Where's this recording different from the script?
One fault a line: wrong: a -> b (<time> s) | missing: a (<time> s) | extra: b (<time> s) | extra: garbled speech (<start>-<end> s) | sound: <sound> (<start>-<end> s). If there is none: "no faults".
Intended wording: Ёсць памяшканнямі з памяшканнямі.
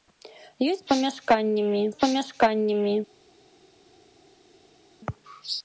no faults